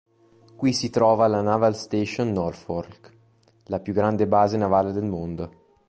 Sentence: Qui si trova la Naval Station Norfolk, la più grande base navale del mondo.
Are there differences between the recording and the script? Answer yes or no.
no